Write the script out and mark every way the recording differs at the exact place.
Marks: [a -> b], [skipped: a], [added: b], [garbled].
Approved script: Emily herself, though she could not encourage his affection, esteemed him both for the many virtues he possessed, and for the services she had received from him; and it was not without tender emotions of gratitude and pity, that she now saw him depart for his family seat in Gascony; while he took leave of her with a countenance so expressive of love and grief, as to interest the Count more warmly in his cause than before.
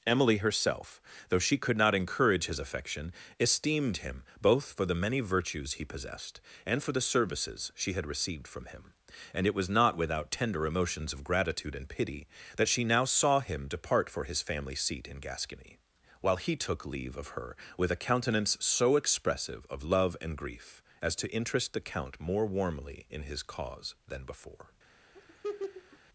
Emily herself, though she could not encourage his affection, esteemed him both for the many virtues he possessed, and for the services she had received from him; and it was not without tender emotions of gratitude and pity, that she now saw him depart for his family seat in Gascony; while he took leave of her with a countenance so expressive of love and grief, as to interest the Count more warmly in his cause than before.